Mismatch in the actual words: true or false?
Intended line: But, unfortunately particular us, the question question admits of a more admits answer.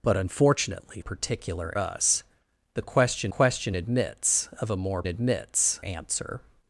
false